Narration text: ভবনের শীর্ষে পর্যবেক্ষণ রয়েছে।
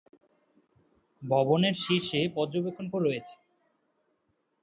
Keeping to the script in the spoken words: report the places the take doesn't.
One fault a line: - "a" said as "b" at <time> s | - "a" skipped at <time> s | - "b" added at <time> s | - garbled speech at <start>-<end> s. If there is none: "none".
none